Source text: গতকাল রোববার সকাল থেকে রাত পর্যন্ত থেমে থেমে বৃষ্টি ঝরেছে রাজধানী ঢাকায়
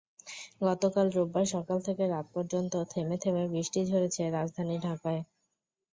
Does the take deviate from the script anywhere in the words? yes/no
no